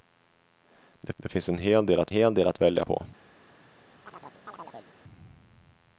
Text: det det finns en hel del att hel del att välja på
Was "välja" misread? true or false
false